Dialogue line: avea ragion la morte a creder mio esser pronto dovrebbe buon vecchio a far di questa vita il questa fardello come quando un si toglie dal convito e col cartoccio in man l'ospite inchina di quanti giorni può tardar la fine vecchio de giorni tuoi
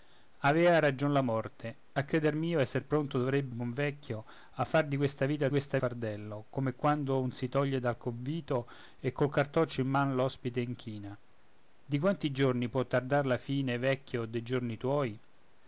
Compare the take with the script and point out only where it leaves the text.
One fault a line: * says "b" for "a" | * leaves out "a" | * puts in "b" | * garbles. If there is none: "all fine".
all fine